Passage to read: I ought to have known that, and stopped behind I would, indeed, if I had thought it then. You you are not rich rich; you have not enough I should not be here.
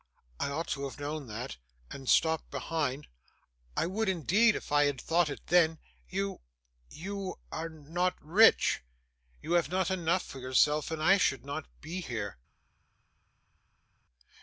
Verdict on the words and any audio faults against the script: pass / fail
fail